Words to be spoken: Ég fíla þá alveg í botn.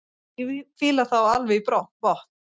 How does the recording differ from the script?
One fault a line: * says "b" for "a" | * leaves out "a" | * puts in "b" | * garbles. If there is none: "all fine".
all fine